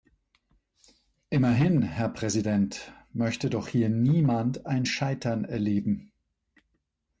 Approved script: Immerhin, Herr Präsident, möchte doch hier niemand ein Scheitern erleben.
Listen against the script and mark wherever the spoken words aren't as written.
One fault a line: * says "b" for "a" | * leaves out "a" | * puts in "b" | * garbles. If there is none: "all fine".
all fine